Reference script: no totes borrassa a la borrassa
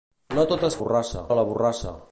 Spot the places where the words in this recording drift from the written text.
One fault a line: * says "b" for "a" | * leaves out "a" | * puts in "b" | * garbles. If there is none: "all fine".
all fine